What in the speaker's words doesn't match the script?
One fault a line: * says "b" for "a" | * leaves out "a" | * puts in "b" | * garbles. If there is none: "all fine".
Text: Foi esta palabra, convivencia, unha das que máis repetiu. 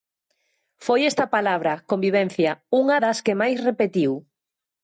all fine